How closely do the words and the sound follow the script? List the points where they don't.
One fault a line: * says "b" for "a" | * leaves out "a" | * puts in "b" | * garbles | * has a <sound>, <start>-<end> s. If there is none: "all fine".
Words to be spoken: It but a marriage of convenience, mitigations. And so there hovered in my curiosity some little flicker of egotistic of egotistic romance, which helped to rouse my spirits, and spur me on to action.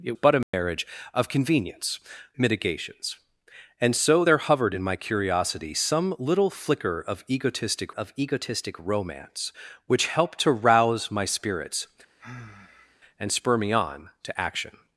* has a dropout, 0.4-0.5 s
* has a sigh, 12.2-13.0 s